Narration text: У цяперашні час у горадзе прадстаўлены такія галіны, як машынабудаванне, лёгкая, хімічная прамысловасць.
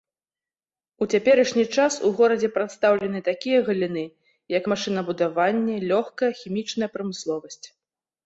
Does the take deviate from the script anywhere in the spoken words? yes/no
no